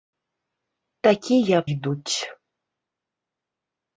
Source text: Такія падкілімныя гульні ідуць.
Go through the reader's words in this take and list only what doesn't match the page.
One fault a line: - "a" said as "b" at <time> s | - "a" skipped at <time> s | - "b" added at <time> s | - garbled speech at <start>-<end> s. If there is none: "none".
- "падкілімныя гульні" skipped at 1.6 s